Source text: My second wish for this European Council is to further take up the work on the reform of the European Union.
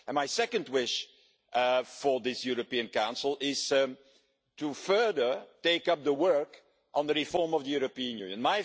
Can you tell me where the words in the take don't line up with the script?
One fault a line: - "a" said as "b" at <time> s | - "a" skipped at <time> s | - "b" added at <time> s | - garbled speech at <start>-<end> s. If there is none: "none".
none